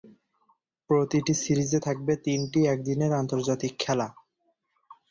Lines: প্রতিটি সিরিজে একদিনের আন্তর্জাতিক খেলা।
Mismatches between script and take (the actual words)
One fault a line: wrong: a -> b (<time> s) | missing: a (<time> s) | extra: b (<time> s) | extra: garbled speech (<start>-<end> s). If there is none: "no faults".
extra: থাকবে তিনটি (1.8 s)